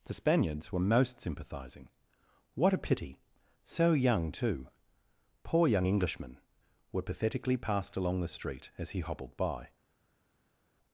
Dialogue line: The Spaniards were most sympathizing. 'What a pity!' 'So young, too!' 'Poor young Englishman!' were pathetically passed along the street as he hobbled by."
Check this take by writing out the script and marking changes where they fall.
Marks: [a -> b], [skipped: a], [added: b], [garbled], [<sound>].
The Spaniards were most sympathizing. 'What a pity!' 'So young, too!' 'Poor young Englishman!' were pathetically passed along the street as he hobbled by."